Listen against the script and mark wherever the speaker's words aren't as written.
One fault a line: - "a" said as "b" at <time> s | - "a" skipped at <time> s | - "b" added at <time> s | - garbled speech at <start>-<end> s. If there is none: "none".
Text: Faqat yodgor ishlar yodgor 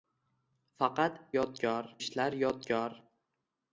none